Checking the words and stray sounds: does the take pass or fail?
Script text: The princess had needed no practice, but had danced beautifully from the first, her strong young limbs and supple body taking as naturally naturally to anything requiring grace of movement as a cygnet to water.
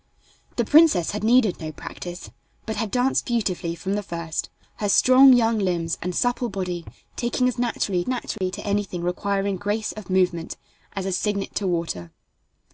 fail